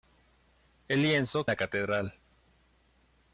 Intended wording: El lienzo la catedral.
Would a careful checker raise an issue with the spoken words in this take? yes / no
no